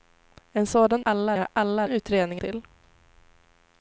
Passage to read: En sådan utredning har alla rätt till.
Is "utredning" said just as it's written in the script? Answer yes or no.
no